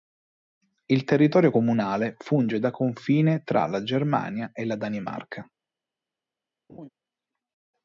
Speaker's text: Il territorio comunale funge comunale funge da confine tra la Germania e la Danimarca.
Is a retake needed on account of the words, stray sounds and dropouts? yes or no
yes